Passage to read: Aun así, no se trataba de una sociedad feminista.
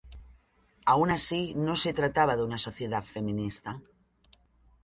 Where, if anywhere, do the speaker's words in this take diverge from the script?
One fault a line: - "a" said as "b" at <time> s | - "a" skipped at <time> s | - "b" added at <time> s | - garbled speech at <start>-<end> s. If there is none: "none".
none